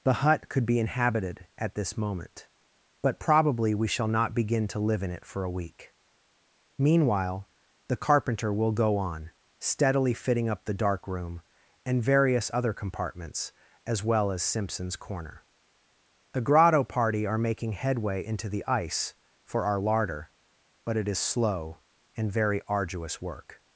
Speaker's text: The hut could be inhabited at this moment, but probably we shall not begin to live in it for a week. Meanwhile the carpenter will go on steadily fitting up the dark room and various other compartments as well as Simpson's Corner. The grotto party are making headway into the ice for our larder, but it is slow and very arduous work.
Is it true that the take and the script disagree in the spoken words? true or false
false